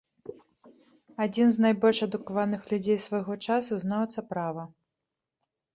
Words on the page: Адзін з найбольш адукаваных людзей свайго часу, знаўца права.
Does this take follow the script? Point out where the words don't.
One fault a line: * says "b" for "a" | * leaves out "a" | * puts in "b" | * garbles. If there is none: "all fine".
all fine